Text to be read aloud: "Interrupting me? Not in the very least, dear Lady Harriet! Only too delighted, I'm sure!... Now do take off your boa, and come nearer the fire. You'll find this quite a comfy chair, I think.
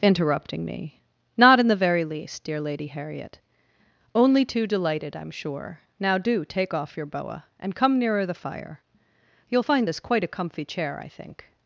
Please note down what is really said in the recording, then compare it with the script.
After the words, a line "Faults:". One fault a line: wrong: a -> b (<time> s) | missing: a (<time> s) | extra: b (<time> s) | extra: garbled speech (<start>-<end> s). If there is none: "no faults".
"Interrupting me? Not in the very least, dear Lady Harriet! Only too delighted, I'm sure!... Now do take off your boa, and come nearer the fire. You'll find this quite a comfy chair, I think.
Faults:
no faults